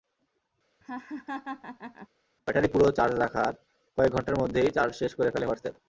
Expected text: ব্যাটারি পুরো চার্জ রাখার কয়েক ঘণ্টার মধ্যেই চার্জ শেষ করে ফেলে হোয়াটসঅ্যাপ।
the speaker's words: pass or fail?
pass